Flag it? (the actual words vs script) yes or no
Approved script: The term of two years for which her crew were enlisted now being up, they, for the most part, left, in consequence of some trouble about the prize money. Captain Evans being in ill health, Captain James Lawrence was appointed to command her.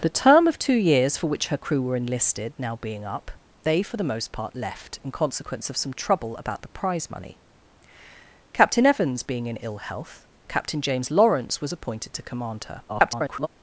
yes